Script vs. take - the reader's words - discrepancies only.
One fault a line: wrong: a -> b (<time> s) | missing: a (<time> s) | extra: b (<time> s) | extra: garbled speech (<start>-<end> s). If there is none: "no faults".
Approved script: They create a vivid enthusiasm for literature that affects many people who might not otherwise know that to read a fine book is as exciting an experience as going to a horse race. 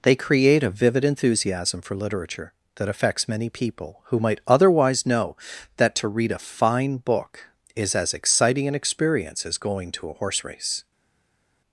missing: not (4.4 s)